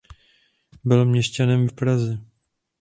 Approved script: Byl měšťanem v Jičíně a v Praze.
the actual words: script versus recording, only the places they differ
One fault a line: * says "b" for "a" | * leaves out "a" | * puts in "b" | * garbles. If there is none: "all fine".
* leaves out "Jičíně"